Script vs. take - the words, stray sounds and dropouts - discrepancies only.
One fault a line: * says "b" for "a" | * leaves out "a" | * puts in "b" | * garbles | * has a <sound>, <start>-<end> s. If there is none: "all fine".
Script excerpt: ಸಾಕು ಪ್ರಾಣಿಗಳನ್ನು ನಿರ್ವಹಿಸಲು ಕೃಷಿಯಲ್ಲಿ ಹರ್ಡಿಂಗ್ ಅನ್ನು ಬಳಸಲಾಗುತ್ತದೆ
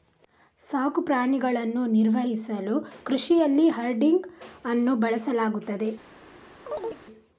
* has a chirp, 6.7-7.0 s